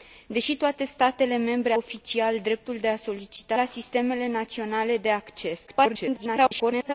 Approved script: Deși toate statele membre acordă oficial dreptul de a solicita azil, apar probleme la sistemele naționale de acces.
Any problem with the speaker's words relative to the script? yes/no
yes